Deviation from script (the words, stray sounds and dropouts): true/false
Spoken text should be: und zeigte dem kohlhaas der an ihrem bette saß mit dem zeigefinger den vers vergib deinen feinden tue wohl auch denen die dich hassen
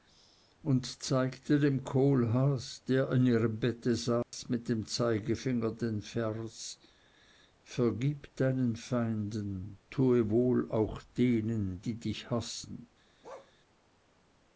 true